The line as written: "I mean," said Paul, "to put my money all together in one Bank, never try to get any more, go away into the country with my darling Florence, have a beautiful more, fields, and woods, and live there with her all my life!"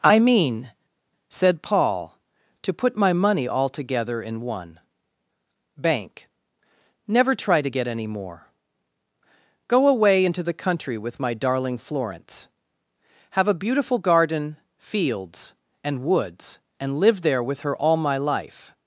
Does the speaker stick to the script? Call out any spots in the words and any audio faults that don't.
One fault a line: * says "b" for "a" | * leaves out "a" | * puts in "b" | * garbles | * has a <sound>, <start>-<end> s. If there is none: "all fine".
* says "garden" for "more"